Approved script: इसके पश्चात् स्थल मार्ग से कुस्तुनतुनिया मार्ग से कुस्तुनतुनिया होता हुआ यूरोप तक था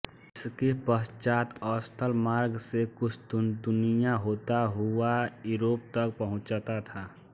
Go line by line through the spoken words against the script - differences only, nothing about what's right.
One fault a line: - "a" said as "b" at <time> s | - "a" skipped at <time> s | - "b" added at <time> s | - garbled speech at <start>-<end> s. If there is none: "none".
- "मार्ग से कुस्तुनतुनिया" skipped at 4.1 s
- "पहुँचता" added at 6.2 s